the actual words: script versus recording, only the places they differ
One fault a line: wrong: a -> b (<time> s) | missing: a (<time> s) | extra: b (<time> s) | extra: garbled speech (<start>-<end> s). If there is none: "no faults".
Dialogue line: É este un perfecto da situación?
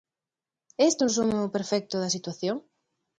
extra: resumo (1.1 s)